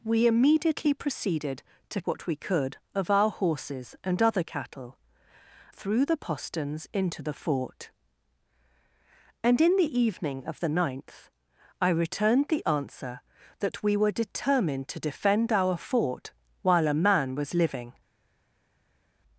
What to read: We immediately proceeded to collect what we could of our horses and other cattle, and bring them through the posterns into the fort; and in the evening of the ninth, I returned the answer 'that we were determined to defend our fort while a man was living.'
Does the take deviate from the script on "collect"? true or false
true